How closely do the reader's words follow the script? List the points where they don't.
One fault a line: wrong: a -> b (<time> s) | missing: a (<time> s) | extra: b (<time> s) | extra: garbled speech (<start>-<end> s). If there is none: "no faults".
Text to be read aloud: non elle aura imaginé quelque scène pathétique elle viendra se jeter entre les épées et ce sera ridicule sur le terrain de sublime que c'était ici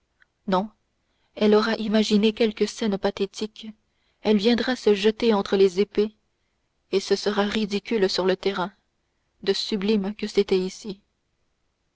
no faults